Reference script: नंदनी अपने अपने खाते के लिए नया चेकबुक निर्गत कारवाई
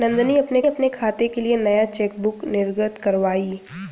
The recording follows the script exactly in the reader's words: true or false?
true